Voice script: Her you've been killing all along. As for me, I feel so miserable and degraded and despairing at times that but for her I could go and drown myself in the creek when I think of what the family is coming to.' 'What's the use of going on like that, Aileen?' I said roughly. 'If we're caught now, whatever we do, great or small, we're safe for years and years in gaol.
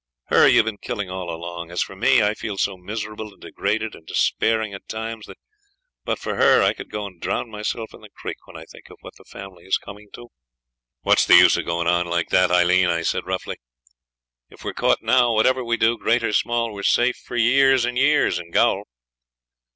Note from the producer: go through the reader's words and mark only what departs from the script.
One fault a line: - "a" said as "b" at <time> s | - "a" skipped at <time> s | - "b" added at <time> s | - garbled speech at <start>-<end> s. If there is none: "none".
none